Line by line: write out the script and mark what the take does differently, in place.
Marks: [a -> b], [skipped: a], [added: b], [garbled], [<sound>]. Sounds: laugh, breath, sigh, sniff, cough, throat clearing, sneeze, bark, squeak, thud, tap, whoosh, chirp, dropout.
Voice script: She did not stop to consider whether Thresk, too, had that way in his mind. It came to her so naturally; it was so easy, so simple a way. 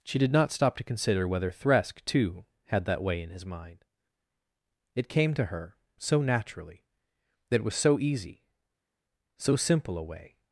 She did not stop to consider whether Thresk, too, had that way in his mind. It came to her so naturally; [added: that] it was so easy, so simple a way.